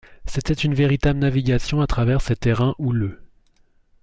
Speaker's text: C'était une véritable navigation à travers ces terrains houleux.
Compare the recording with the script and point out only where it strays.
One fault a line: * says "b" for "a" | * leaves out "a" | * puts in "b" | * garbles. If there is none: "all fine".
all fine